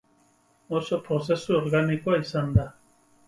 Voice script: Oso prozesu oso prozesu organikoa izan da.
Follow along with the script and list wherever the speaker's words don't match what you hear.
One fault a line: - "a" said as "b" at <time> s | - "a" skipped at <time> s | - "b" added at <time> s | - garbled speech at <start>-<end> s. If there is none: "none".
- "oso prozesu" skipped at 1.6 s